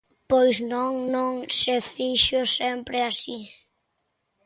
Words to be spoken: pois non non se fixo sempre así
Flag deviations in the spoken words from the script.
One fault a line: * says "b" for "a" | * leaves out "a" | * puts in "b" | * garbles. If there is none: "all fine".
all fine